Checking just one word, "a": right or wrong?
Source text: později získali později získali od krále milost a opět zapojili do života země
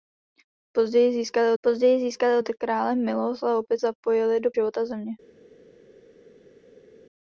right